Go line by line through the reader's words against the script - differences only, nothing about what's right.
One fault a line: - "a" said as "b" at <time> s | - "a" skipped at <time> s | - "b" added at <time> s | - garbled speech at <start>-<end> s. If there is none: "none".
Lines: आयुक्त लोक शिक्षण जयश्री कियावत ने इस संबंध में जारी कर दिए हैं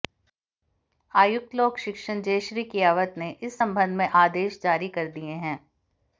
- "आदेश" added at 4.2 s